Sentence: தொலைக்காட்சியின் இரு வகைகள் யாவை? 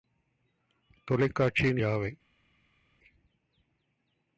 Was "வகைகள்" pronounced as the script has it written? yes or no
no